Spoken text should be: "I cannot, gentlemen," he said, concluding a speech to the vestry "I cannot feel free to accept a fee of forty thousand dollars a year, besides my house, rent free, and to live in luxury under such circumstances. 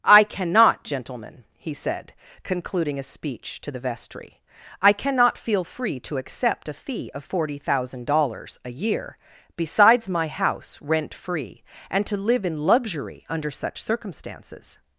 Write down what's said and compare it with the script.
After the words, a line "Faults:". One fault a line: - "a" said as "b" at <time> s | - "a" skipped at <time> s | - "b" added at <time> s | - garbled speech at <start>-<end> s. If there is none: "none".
"I cannot, gentlemen," he said, concluding a speech to the vestry "I cannot feel free to accept a fee of forty thousand dollars a year, besides my house, rent free, and to live in luxury under such circumstances.
Faults:
none